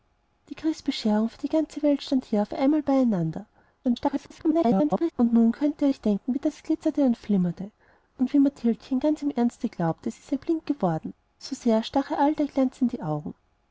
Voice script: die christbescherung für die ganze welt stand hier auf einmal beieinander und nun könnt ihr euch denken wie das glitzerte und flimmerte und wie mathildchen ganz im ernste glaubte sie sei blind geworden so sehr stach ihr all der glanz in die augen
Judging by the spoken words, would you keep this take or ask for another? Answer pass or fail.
fail